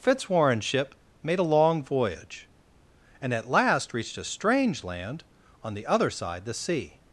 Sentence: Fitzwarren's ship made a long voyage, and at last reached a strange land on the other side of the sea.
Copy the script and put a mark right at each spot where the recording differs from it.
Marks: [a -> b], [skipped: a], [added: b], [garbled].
Fitzwarren's ship made a long voyage, and at last reached a strange land on the other side [skipped: of] the sea.